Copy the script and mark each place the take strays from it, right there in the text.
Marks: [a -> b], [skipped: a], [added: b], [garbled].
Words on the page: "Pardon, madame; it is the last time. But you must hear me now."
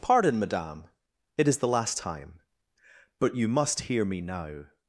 "Pardon, madame; it is the last time. But you must hear me now."